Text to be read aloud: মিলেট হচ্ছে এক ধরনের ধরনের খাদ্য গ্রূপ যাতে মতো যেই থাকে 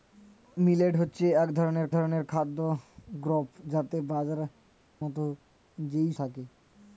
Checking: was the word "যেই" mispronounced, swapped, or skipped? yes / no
no